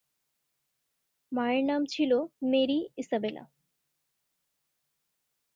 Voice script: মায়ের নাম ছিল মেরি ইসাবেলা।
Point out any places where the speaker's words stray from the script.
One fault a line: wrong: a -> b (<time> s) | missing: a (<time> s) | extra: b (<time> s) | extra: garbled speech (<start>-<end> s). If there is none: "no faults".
no faults